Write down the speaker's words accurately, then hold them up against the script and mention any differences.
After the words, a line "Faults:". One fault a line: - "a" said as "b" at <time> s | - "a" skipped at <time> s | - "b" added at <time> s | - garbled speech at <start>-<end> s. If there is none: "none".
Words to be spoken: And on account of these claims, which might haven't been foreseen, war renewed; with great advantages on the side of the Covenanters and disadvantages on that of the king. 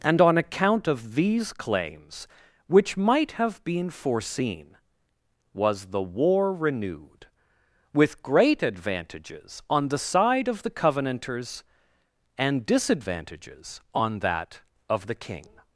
And on account of these claims, which might have been foreseen, was the war renewed; with great advantages on the side of the Covenanters and disadvantages on that of the king.
Faults:
- "haven't" said as "have" at 3.3 s
- "was the" added at 5.5 s